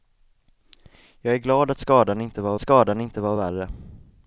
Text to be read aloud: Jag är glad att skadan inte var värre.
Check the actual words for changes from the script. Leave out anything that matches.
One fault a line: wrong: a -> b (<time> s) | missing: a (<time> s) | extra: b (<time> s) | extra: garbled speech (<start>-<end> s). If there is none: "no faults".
extra: skadan inte var (2.6 s)